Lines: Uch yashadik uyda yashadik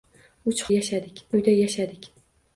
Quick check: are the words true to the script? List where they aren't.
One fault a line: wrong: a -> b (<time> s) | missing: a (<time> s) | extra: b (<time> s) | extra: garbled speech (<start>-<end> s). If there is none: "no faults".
no faults